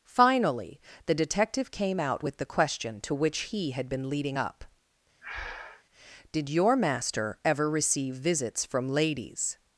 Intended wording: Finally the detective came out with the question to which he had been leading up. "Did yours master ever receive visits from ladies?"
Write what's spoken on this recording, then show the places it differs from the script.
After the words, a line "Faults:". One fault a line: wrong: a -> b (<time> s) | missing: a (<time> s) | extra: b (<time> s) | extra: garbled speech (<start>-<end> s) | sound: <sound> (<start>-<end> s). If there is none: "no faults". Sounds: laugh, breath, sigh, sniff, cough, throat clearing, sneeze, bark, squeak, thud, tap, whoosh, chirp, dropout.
Finally the detective came out with the question to which he had been leading up. "Did your master ever receive visits from ladies?"
Faults:
sound: breath (5.2-5.8 s)
wrong: yours -> your (6.5 s)